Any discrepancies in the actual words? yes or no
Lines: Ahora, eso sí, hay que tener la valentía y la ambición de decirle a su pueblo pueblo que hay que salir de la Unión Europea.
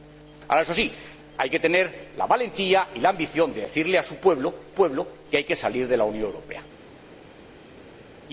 no